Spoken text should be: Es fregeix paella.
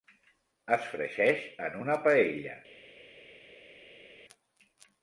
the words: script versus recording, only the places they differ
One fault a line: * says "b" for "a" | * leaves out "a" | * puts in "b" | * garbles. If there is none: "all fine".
* puts in "en una"